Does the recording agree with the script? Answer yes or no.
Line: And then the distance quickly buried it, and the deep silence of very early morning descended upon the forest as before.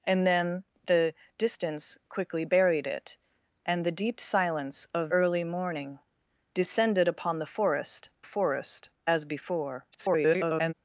no